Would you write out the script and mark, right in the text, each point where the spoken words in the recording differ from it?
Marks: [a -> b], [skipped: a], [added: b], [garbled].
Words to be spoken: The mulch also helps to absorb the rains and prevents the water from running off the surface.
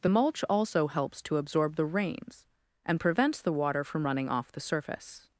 The mulch also helps to absorb the rains and prevents the water from running off the surface.